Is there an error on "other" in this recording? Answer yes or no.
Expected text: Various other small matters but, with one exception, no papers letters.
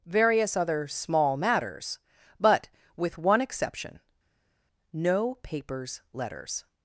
no